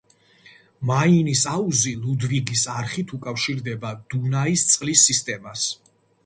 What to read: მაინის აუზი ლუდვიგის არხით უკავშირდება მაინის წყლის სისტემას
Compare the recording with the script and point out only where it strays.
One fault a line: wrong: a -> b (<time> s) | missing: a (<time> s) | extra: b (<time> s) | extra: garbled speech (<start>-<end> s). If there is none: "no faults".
wrong: მაინის -> დუნაის (4.2 s)